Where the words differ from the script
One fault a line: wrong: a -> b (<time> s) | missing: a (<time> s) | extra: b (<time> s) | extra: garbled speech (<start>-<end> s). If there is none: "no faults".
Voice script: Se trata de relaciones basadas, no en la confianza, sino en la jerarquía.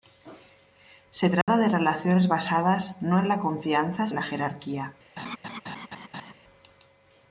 missing: sino (4.1 s)